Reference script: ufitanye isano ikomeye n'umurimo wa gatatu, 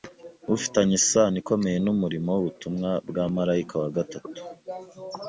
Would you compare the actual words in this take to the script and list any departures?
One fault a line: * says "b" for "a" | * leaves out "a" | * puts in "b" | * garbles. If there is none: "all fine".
* puts in "w'ubutumwa bwa marayika"